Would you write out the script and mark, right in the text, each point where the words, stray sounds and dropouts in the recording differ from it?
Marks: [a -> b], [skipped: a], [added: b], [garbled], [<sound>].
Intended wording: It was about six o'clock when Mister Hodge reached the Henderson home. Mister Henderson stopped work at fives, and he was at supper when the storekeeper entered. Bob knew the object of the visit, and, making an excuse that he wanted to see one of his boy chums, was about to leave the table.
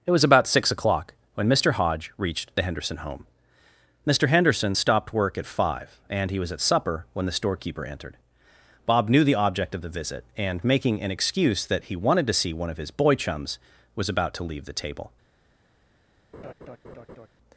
It was about six o'clock when Mister Hodge reached the Henderson home. Mister Henderson stopped work at [fives, -> five] and he was at supper when the storekeeper entered. Bob knew the object of the visit, and, making an excuse that he wanted to see one of his boy chums, was about to leave the table. [laugh]